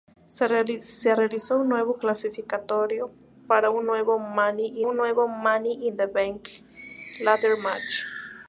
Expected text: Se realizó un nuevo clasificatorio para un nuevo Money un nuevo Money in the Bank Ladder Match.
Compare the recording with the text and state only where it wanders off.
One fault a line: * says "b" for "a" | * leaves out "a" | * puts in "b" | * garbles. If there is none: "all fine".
all fine